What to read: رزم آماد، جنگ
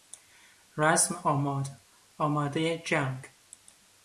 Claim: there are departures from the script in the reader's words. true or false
true